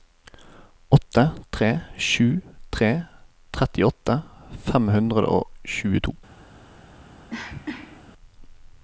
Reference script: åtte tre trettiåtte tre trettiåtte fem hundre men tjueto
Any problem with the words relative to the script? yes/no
yes